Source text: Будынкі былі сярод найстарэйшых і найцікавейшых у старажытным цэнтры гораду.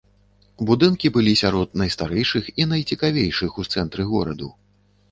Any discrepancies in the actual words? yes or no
yes